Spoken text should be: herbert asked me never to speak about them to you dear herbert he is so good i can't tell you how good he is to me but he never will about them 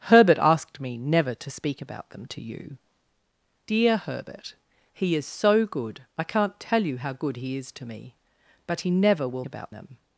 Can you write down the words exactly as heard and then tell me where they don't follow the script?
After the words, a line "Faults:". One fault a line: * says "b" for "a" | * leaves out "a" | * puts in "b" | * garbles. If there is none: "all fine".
herbert asked me never to speak about them to you dear herbert he is so good i can't tell you how good he is to me but he never will about them
Faults:
all fine